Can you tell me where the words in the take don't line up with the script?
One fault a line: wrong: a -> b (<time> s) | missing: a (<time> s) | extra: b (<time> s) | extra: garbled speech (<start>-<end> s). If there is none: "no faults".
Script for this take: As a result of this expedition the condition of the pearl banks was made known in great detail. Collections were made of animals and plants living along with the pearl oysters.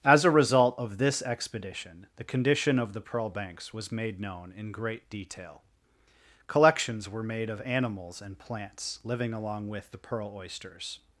no faults